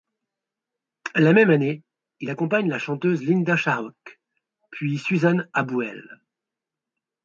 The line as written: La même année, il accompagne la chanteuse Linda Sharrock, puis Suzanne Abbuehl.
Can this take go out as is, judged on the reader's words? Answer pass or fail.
pass